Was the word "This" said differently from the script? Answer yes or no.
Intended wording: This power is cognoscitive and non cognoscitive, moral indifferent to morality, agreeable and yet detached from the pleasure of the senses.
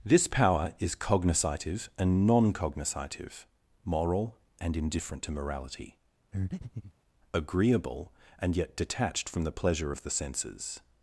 no